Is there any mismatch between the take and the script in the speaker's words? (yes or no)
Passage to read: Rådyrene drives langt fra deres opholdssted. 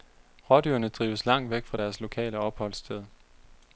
yes